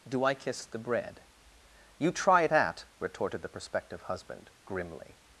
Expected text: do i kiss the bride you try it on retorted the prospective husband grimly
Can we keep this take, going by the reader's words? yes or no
no